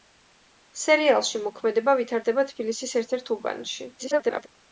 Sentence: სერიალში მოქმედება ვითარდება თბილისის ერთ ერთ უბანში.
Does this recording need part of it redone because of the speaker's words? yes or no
yes